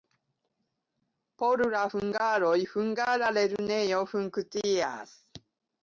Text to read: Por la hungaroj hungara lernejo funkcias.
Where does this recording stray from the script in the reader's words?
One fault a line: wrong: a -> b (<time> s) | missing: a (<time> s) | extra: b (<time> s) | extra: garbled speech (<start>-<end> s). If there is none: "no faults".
no faults